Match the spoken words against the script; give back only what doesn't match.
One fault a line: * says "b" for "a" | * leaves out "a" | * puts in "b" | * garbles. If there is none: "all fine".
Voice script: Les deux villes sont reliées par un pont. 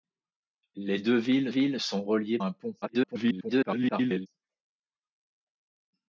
* puts in "villes"
* leaves out "par"
* garbles